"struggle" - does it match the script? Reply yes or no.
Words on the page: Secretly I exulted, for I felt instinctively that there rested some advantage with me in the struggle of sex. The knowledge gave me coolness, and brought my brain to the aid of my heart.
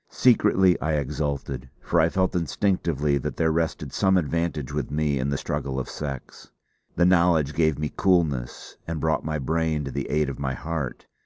yes